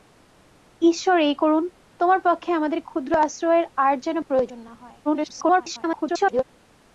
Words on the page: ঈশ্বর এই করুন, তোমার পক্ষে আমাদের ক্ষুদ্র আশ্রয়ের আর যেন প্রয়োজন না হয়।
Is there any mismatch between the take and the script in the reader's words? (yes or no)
yes